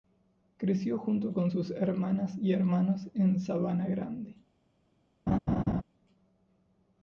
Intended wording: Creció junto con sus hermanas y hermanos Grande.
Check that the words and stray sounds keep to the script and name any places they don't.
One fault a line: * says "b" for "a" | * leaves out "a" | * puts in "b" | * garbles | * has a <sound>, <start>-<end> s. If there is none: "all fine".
* puts in "en Sabana"
* has a laugh, 5.3-5.8 s